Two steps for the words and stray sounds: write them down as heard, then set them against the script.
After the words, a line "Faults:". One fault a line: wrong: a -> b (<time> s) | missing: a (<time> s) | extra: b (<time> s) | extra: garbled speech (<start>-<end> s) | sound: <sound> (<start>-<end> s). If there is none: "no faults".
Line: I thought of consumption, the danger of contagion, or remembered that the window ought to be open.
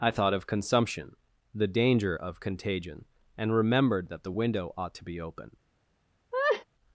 I thought of consumption, the danger of contagion, and remembered that the window ought to be open.
Faults:
wrong: or -> and (3.3 s)
sound: laugh (6.3-6.6 s)